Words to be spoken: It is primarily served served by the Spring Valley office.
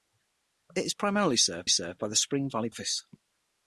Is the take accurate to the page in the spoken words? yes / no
yes